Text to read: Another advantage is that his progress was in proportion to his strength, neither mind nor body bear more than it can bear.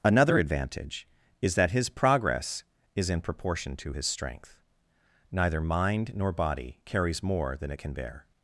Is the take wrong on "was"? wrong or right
wrong